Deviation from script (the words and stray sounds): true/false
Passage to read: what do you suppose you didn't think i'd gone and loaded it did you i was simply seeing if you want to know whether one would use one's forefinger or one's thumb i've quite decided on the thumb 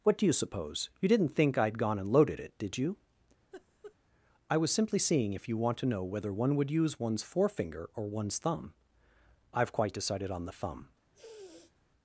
true